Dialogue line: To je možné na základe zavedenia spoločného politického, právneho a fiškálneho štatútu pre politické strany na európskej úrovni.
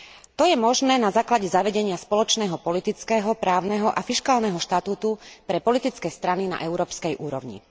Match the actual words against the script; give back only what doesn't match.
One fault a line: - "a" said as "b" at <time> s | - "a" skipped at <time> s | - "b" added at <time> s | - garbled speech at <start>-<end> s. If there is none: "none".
none